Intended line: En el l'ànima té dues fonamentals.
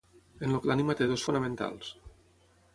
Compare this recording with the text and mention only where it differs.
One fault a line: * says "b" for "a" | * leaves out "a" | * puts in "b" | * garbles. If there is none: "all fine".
all fine